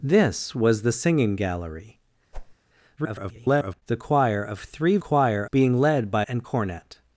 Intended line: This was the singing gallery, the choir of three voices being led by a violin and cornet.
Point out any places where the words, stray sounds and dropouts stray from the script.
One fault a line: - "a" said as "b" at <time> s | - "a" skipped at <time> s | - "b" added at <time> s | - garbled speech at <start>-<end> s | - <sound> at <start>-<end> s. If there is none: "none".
- whoosh at 2.3-2.6 s
- garbled speech at 3.0-3.8 s
- "voices" said as "choir" at 5.0 s
- "a violin" skipped at 6.2 s